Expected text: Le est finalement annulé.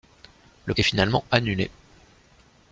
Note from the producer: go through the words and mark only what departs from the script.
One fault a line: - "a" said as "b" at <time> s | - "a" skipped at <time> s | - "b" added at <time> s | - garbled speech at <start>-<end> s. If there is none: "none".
none